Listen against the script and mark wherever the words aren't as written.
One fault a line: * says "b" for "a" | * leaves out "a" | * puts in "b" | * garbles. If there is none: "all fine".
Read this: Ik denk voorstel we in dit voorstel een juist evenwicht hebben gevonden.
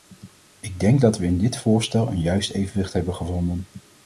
* says "dat" for "voorstel"